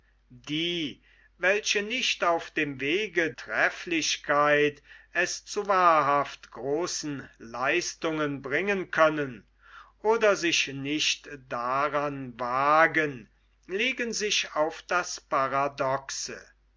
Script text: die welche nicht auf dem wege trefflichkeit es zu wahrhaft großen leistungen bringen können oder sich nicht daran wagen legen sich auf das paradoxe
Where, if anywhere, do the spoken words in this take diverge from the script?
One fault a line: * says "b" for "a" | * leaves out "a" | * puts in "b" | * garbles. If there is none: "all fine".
all fine